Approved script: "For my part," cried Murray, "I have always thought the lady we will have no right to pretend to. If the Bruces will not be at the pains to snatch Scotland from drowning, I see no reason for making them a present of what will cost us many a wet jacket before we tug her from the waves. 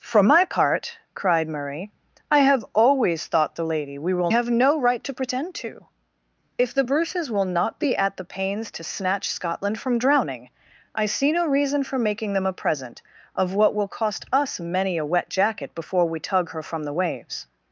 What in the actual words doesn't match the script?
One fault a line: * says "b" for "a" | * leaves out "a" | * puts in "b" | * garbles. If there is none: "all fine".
all fine